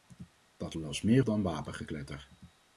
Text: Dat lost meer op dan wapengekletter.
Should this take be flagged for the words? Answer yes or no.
yes